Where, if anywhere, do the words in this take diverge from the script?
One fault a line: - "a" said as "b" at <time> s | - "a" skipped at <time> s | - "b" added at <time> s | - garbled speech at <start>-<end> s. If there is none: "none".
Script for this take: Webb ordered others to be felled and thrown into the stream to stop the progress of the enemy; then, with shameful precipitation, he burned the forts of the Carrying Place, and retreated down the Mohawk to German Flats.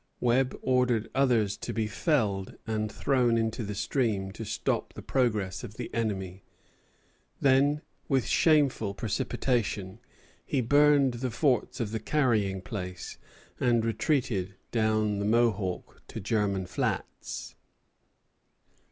none